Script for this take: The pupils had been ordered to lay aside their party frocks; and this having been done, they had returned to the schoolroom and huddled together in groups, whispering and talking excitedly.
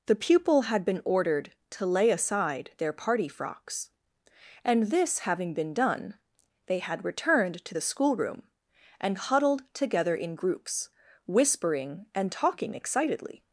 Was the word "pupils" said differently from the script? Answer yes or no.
yes